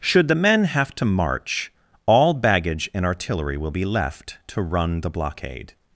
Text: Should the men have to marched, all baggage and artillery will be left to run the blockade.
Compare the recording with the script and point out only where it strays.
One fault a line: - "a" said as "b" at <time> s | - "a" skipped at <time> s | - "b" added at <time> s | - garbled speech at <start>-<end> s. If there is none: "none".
- "marched" said as "march" at 1.1 s